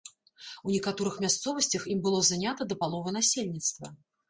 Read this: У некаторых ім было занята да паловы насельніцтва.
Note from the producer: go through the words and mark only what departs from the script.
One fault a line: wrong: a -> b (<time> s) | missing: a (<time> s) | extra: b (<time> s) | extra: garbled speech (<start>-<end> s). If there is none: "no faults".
extra: мясцовасцях (1.2 s)